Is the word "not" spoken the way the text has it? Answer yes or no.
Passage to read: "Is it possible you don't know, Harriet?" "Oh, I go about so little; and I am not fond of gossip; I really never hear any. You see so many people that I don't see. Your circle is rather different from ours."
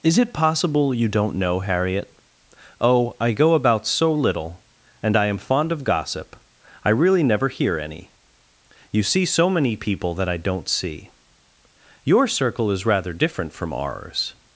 no